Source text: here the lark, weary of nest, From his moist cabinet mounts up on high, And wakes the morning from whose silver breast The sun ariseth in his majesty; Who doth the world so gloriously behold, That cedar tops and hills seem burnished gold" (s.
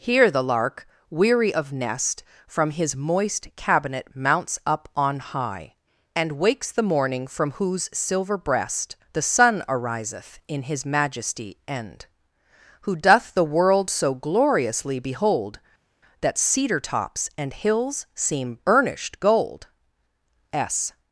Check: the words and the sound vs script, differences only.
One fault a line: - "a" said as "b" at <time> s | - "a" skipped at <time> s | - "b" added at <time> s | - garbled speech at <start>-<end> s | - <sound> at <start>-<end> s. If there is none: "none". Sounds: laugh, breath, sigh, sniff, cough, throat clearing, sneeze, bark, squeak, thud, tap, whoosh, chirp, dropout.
- "end" added at 11.7 s